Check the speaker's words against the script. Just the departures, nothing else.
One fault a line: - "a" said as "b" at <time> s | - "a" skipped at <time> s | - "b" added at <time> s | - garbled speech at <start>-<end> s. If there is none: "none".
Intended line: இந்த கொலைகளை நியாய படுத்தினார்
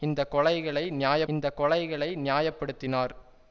- "இந்த கொலைகளை நியாய" added at 1.3 s